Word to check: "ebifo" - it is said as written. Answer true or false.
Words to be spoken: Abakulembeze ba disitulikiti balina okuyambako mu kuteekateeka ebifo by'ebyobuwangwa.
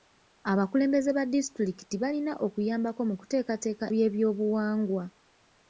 false